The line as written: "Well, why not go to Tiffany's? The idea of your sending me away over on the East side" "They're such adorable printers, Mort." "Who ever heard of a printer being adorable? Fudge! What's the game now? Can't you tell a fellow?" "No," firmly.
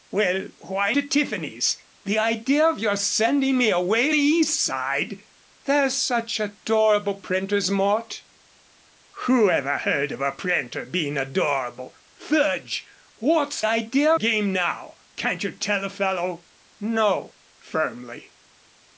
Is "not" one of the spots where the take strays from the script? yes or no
yes